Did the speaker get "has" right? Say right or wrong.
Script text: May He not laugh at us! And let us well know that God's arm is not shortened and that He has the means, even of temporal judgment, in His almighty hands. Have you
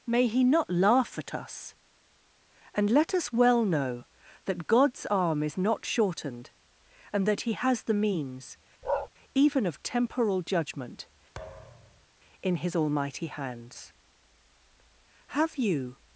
right